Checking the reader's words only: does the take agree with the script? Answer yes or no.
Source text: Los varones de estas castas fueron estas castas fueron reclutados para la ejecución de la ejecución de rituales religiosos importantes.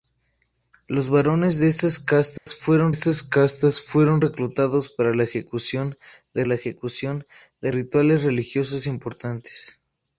yes